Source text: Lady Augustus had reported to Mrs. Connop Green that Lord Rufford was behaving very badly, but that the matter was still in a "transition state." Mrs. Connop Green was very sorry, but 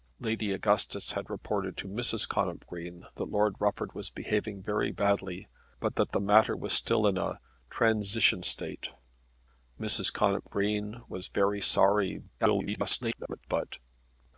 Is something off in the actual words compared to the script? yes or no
yes